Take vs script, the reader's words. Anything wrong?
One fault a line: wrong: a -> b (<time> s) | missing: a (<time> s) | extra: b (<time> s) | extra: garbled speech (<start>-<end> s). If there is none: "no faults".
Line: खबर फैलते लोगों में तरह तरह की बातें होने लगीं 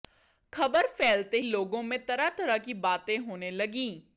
no faults